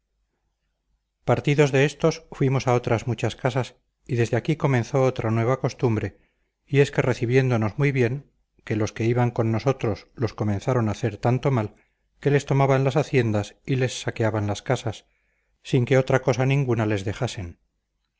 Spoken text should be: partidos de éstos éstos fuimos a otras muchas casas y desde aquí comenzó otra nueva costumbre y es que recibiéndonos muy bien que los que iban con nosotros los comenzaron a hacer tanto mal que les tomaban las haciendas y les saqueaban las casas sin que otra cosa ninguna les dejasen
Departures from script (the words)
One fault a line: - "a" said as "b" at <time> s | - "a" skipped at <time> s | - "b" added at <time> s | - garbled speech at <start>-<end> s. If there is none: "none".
- "éstos" skipped at 2.2 s